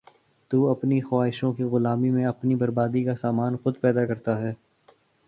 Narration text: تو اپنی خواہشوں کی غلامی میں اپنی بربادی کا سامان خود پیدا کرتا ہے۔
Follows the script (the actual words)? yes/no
yes